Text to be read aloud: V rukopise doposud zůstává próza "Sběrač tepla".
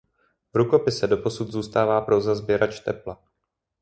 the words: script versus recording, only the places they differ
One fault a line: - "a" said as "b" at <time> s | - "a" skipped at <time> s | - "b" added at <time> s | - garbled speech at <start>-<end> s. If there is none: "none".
none